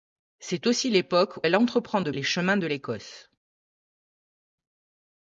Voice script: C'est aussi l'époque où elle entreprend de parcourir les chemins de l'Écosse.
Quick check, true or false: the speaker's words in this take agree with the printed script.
false